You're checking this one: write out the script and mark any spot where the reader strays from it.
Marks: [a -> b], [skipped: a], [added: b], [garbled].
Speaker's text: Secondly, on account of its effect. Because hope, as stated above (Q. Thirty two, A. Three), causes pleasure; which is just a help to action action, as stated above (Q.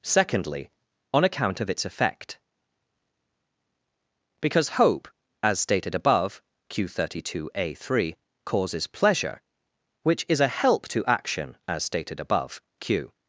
Secondly, on account of its effect. Because hope, as stated above (Q. Thirty two, A. Three), causes pleasure; which is [skipped: just] a help to action [skipped: action,] as stated above (Q.